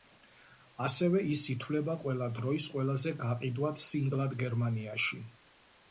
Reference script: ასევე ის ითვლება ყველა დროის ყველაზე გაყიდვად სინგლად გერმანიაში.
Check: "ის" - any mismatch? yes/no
no